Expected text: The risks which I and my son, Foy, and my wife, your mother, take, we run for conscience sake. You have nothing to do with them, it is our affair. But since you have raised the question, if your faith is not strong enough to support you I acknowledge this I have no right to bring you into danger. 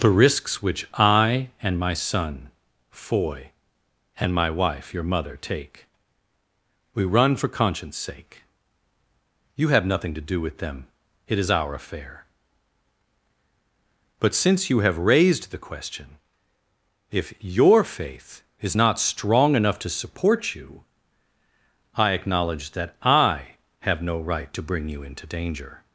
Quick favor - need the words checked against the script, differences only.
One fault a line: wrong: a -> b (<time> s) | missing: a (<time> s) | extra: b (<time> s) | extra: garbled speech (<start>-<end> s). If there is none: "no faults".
wrong: this -> that (22.7 s)